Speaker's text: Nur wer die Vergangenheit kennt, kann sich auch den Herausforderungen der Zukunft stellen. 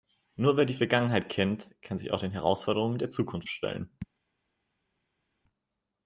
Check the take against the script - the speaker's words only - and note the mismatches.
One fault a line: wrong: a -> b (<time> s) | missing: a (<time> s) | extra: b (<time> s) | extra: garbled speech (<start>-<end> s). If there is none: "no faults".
no faults